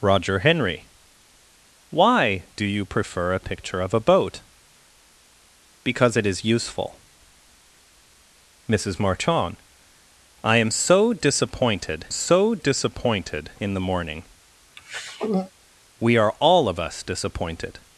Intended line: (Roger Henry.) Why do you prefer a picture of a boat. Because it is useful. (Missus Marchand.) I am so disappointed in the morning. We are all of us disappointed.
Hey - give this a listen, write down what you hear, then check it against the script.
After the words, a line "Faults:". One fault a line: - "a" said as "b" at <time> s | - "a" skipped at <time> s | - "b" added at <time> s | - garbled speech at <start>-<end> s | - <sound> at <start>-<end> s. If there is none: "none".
(Roger Henry.) Why do you prefer a picture of a boat. Because it is useful. (Missus Marchand.) I am so disappointed so disappointed in the morning. We are all of us disappointed.
Faults:
- "so disappointed" added at 12.1 s
- throat clearing at 14.8-15.5 s